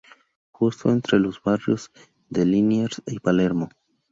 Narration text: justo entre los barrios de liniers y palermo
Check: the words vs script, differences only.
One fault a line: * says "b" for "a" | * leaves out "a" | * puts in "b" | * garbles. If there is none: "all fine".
all fine